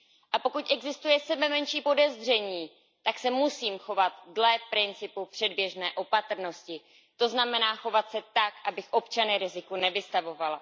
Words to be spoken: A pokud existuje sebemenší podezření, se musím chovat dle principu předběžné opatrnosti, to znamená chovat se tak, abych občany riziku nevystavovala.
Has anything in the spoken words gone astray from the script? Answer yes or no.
yes